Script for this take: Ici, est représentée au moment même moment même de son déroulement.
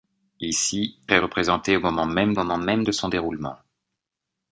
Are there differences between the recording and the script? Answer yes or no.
no